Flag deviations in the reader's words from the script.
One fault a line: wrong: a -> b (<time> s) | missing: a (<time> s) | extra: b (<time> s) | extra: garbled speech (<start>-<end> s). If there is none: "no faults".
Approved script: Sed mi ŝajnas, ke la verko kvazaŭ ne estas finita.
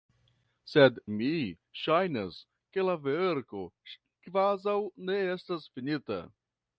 no faults